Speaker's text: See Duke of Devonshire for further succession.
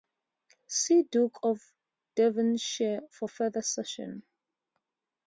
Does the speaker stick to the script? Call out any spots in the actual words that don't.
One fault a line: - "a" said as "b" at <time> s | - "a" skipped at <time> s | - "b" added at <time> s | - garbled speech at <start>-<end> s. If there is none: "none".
none